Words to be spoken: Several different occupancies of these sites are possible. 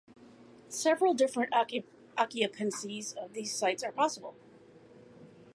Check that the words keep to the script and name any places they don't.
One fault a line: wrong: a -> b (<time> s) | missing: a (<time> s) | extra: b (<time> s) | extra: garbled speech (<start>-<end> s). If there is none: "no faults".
no faults